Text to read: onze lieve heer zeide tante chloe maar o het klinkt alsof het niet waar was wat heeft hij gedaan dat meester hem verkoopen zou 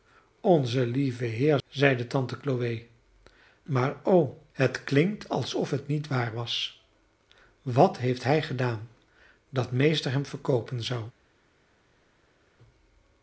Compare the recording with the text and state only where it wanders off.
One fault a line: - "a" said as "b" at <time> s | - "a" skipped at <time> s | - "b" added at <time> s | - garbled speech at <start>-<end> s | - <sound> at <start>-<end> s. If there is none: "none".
none